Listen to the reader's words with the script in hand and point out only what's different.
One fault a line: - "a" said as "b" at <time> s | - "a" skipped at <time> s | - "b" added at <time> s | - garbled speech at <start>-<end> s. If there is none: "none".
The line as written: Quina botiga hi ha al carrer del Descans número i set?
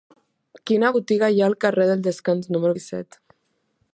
none